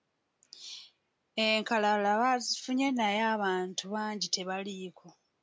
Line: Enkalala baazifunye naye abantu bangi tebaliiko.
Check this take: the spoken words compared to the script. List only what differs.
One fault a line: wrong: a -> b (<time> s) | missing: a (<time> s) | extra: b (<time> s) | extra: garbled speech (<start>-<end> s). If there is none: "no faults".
no faults